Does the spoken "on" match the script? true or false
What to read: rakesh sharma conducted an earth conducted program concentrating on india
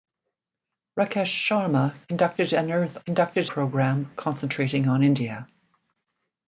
true